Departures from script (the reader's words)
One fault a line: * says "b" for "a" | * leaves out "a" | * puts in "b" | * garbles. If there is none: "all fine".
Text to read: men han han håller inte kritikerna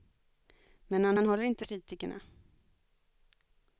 all fine